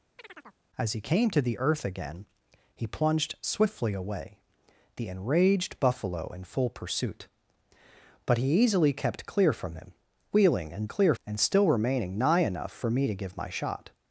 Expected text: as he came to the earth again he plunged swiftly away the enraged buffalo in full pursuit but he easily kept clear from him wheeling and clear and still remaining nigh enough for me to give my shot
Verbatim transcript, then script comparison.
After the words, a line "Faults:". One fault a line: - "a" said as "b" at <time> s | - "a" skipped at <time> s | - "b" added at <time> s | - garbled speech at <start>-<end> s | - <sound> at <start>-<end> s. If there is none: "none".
as he came to the earth again he plunged swiftly away the enraged buffalo in full pursuit but he easily kept clear from him wheeling and clear and still remaining nigh enough for me to give my shot
Faults:
- chirp at 0.2-0.6 s